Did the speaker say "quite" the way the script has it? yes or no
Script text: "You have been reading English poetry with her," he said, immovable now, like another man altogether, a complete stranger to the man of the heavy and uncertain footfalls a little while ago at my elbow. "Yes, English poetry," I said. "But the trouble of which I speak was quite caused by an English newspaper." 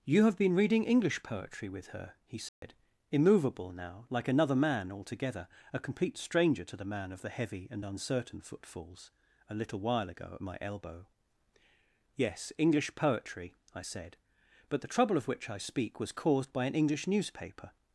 no